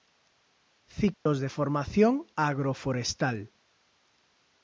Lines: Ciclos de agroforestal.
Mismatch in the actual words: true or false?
true